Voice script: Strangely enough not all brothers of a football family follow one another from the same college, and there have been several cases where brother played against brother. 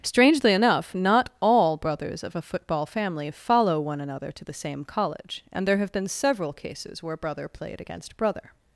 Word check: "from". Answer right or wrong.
wrong